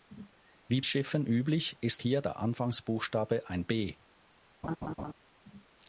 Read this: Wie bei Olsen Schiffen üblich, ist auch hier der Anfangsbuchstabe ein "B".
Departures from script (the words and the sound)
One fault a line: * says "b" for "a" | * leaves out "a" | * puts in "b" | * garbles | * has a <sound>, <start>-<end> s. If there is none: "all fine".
* leaves out "bei Olsen"
* leaves out "auch"
* has a laugh, 4.6-5.1 s